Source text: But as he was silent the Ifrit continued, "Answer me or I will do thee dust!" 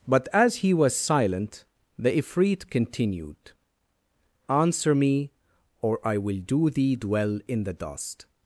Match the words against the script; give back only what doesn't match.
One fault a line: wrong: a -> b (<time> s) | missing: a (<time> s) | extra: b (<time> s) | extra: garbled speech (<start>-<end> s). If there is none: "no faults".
extra: dwell in the (7.0 s)